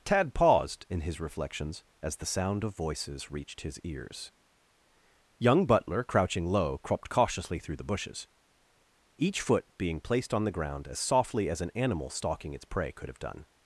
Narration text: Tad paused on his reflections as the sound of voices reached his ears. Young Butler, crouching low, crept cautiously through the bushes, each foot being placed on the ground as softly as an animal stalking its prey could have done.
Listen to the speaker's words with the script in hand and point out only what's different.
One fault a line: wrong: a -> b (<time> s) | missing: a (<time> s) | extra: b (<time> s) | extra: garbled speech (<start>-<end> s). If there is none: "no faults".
wrong: on -> in (0.9 s)